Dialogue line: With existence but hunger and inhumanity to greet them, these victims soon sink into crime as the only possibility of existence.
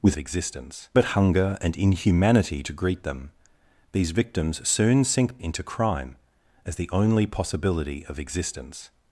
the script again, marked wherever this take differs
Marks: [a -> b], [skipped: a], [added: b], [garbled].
With existence but hunger and inhumanity to greet them, these victims soon sink into crime as the only possibility of existence.